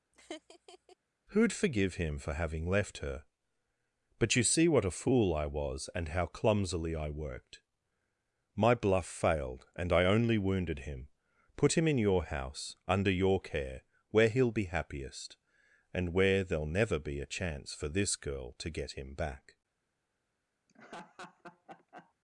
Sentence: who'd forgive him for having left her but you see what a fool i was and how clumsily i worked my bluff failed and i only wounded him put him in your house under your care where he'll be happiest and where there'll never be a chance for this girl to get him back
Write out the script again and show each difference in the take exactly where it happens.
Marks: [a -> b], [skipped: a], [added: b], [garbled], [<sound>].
[laugh] who'd forgive him for having left her but you see what a fool i was and how clumsily i worked my bluff failed and i only wounded him put him in your house under your care where he'll be happiest and where there'll never be a chance for this girl to get him back [laugh]